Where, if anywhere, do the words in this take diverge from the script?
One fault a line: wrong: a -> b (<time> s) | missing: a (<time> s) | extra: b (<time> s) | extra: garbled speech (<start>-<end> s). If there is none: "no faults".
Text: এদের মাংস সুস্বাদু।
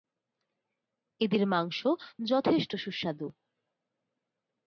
extra: যথেষ্ট (2.3 s)